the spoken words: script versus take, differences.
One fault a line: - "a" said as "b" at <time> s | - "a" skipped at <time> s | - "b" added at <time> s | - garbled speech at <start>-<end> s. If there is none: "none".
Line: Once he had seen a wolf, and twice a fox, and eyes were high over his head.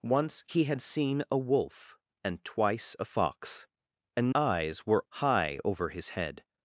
none